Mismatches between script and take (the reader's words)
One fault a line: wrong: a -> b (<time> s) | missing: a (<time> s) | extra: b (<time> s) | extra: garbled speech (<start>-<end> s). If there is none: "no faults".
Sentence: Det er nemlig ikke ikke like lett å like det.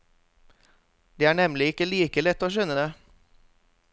missing: ikke (1.9 s)
wrong: like -> skjønne (2.5 s)